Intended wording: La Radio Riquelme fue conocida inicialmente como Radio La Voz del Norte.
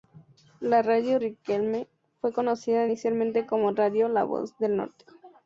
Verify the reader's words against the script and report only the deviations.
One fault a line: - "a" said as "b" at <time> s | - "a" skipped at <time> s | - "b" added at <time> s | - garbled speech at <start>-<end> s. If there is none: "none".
none